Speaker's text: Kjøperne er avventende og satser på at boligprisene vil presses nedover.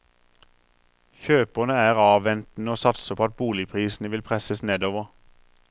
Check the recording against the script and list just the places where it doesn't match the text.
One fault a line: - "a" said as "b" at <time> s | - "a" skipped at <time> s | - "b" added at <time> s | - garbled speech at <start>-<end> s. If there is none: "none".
none